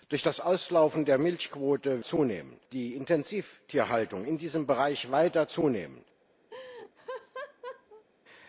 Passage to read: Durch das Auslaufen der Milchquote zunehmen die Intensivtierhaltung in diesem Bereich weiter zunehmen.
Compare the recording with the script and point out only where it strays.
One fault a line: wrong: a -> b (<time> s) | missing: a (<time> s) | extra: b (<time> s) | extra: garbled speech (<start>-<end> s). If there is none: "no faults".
no faults